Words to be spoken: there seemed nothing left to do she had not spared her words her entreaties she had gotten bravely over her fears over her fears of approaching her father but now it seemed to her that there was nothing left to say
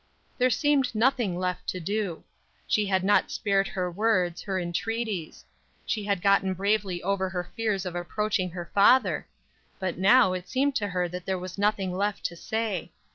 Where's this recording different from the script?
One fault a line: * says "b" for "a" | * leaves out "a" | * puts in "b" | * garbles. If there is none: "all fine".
* leaves out "over her fears"